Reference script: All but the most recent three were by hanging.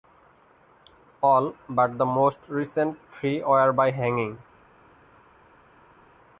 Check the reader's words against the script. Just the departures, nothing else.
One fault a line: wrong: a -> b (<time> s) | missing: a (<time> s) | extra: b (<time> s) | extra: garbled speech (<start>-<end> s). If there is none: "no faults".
no faults